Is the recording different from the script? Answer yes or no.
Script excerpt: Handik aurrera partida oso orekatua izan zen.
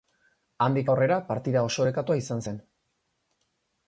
no